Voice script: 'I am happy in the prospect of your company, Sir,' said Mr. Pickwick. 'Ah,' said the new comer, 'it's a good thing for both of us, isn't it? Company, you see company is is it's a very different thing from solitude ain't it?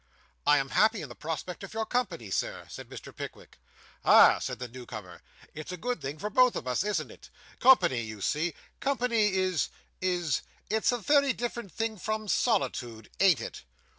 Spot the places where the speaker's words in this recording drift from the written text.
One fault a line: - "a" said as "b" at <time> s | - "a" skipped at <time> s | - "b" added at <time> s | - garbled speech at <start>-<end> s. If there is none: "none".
none